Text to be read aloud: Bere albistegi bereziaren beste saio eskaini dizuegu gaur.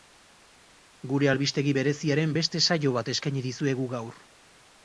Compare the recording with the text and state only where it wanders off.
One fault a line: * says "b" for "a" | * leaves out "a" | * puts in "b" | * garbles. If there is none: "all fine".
* says "Gure" for "Bere"
* puts in "bat"